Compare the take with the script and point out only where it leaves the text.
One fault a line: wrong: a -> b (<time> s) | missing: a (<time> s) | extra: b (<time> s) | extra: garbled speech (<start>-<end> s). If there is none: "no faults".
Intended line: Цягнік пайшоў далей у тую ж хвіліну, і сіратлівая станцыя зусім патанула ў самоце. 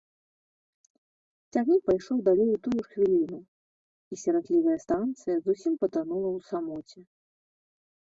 no faults